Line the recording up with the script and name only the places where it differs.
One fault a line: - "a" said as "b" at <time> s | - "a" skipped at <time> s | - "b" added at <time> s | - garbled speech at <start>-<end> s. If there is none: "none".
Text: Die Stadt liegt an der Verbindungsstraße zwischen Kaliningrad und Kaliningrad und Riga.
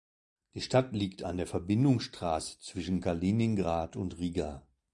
- "Kaliningrad und" skipped at 4.2 s